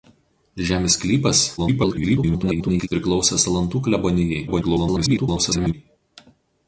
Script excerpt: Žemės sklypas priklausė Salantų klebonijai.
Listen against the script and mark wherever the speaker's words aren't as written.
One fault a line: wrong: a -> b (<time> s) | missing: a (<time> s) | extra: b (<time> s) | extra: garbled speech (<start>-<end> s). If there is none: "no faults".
extra: garbled speech (1.6-2.9 s)
extra: garbled speech (4.5-5.7 s)